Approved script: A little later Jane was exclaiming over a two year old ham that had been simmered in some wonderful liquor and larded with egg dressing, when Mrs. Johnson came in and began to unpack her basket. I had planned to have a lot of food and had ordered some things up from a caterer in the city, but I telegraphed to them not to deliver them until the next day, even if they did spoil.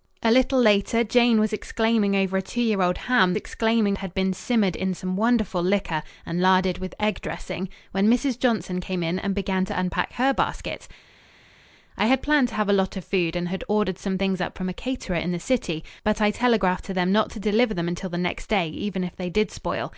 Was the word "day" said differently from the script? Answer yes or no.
no